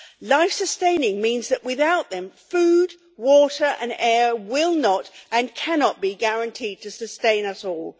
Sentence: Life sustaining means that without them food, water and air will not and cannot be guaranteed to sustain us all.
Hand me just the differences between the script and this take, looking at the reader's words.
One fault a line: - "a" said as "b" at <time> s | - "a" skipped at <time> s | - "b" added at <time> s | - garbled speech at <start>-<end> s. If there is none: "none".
none